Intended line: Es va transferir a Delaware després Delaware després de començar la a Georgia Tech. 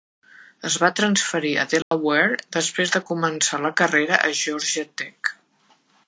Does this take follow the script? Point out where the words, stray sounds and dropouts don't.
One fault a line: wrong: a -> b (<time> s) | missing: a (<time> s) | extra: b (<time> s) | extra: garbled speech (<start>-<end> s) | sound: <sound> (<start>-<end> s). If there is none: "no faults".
sound: dropout (1.8-1.9 s)
missing: Delaware després (2.9 s)
extra: carrera (3.8 s)